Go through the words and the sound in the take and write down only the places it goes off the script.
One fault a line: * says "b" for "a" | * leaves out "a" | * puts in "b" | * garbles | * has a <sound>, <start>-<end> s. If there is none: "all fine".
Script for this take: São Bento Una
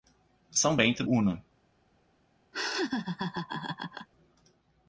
* has a laugh, 2.5-4.1 s